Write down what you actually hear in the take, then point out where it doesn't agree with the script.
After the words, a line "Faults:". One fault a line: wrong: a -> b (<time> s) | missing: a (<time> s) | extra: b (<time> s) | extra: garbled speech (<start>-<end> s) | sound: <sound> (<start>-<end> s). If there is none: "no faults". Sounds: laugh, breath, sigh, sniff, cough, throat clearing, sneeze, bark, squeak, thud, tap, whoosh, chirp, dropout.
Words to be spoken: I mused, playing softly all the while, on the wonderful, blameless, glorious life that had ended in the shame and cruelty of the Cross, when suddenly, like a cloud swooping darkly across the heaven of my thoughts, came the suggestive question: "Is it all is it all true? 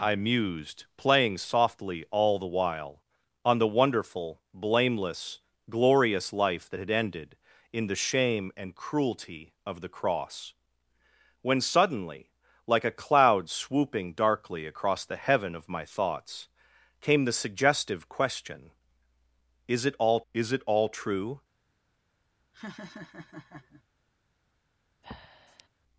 I mused, playing softly all the while, on the wonderful, blameless, glorious life that had ended in the shame and cruelty of the Cross, when suddenly, like a cloud swooping darkly across the heaven of my thoughts, came the suggestive question: "Is it all is it all true?
Faults:
sound: laugh (22.5-23.8 s)
sound: breath (25.0-25.7 s)